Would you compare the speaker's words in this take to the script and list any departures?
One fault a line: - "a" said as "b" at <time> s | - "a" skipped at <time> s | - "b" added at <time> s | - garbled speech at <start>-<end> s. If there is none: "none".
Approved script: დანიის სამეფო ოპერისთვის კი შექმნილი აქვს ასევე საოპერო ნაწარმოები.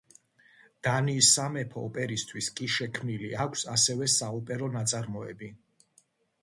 none